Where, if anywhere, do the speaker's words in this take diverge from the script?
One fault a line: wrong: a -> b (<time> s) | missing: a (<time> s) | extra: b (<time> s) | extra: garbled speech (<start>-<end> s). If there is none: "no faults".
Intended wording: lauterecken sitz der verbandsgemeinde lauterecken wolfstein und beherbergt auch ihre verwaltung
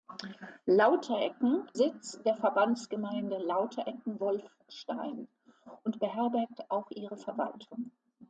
no faults